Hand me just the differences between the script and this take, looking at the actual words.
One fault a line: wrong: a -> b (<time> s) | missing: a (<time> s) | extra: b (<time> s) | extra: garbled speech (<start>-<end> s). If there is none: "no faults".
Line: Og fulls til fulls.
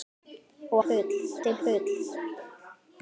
no faults